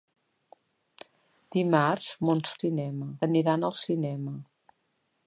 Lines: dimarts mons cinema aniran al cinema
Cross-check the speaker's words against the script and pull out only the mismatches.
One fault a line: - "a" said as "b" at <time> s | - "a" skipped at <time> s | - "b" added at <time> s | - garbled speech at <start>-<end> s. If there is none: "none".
none